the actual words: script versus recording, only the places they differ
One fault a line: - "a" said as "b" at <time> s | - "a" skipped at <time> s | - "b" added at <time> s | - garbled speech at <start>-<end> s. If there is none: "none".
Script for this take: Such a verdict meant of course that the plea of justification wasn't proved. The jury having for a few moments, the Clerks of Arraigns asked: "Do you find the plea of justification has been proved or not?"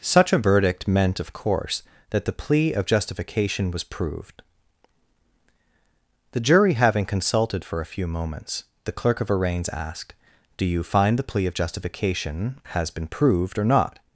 - "wasn't" said as "was" at 3.7 s
- "consulted" added at 7.0 s
- "Clerks" said as "Clerk" at 8.9 s